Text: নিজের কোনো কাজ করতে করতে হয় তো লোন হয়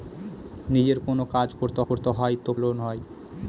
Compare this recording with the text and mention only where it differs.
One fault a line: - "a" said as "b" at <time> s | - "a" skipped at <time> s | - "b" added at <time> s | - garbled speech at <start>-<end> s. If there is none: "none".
none